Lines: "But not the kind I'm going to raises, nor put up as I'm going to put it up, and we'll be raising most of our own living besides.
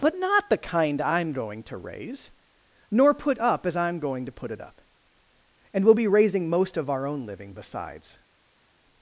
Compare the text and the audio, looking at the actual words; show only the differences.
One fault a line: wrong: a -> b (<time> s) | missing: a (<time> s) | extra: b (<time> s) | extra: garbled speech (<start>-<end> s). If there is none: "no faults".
wrong: raises -> raise (1.8 s)